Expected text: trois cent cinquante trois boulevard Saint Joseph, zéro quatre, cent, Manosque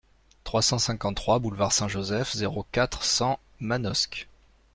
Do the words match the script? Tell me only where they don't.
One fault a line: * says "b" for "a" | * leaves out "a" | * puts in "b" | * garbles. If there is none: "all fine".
all fine